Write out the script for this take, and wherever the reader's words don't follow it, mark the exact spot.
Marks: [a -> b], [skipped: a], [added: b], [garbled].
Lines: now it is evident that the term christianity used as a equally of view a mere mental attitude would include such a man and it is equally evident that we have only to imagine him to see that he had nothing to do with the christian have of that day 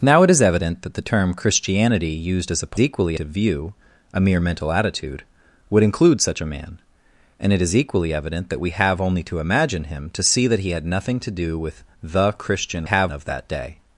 now it is evident that the term christianity used as a equally of view a mere mental attitude would include such a man and it is equally evident that we have only to imagine him to see that he had nothing to do with the christian have of that day